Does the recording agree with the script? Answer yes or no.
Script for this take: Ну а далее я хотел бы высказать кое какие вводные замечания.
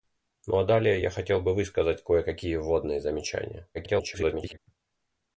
no